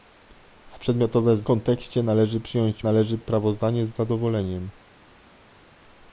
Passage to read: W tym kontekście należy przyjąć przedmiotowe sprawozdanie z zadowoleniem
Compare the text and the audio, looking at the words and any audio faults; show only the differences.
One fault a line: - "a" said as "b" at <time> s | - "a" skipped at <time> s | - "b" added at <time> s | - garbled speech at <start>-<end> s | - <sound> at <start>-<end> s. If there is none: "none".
- "tym" said as "przedmiotowe" at 0.8 s
- "przedmiotowe" said as "należy" at 2.8 s